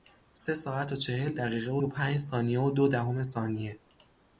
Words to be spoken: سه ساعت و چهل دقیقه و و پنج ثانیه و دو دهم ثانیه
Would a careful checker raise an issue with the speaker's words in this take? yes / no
no